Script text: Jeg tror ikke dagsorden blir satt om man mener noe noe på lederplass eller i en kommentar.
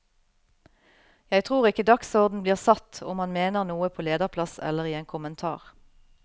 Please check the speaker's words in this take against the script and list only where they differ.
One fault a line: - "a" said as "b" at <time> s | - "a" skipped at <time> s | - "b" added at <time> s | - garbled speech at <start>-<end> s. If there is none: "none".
- "noe" skipped at 3.9 s